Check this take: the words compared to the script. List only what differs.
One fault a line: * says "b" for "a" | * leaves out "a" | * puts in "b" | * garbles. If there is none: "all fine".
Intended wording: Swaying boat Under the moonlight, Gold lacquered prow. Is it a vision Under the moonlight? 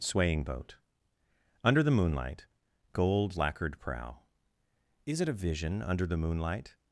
all fine